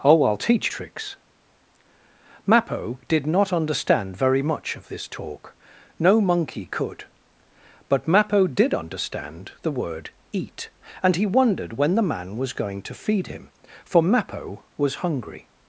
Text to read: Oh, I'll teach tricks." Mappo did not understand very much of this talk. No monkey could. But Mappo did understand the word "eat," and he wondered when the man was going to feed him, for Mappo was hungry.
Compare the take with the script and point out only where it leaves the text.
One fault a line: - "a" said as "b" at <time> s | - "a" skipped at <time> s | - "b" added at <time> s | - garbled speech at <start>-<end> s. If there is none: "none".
none